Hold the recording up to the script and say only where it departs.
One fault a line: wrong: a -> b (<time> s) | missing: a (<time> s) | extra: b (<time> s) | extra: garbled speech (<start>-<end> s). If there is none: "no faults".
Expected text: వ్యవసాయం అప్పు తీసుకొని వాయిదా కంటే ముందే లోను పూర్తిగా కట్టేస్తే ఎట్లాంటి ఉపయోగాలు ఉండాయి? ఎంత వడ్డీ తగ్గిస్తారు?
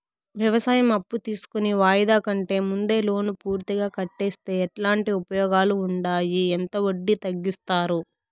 no faults